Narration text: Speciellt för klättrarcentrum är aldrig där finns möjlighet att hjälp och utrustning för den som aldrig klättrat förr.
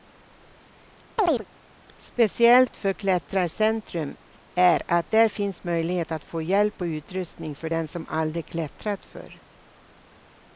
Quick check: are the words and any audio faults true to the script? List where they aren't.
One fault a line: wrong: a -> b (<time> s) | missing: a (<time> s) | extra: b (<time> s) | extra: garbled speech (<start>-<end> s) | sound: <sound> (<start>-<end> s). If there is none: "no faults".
sound: chirp (1.2-1.5 s)
wrong: aldrig -> att (4.9 s)
extra: få (6.2 s)